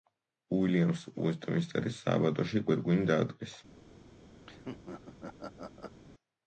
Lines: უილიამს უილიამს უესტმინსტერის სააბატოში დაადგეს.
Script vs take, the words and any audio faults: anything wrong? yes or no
yes